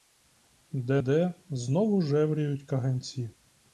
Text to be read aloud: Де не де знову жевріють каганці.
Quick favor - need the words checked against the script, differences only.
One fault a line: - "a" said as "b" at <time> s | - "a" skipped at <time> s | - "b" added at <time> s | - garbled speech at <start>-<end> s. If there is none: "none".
- "не" skipped at 1.0 s